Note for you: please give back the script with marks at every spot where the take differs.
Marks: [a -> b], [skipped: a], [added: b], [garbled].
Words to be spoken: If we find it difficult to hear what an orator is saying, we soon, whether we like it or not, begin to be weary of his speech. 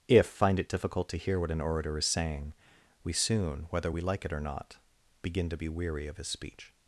If [skipped: we] find it difficult to hear what an orator is saying, we soon, whether we like it or not, begin to be weary of his speech.